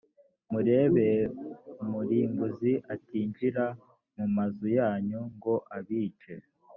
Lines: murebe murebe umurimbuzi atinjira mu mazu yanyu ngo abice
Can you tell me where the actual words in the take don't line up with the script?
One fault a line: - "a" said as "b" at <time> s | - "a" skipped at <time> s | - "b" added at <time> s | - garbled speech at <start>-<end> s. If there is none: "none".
- "murebe" skipped at 1.1 s